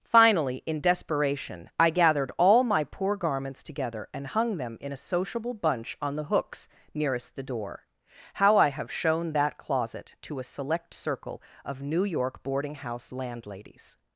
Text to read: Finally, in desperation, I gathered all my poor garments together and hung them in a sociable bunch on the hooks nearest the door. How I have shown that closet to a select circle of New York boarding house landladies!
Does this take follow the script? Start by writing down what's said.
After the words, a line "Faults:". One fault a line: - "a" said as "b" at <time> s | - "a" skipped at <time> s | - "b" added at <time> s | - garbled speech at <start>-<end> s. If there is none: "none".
Finally, in desperation, I gathered all my poor garments together and hung them in a sociable bunch on the hooks nearest the door. How I have shown that closet to a select circle of New York boarding house landladies!
Faults:
none